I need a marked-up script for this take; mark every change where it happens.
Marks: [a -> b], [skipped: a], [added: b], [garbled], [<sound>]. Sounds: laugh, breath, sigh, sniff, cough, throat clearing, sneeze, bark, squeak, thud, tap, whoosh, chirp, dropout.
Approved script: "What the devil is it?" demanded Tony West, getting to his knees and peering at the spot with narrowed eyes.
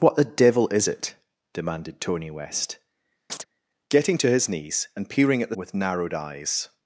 "What the devil is it?" demanded Tony West, [chirp] getting to his knees and peering at the [skipped: spot] with narrowed eyes.